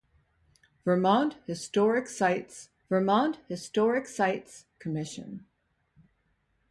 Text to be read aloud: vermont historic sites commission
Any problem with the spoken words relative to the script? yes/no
yes